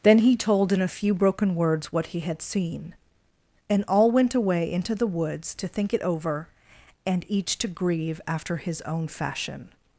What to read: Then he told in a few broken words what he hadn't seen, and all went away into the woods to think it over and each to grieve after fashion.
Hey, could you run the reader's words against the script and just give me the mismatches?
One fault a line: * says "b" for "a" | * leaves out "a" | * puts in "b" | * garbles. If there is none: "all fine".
* says "had" for "hadn't"
* puts in "his own"